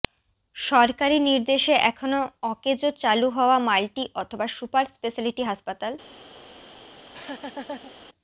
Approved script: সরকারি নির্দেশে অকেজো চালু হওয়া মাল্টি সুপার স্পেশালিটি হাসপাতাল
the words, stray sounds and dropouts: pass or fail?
fail